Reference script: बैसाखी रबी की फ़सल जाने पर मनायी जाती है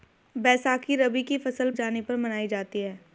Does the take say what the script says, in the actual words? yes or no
yes